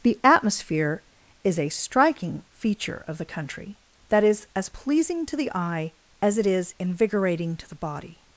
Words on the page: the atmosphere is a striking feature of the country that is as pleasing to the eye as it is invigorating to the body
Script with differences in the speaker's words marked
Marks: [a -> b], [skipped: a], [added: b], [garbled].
the atmosphere is a striking feature of the country that is as pleasing to the eye as it is invigorating to the body